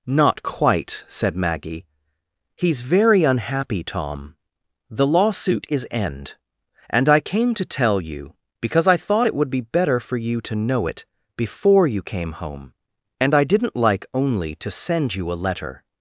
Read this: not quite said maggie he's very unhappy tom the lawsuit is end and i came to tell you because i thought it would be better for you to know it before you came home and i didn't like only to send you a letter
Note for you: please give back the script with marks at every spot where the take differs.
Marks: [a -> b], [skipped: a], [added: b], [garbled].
not quite said maggie he's very unhappy tom the lawsuit is end and i came to tell you because i thought it would be better for you to know it before you came home and i didn't like only to send you a letter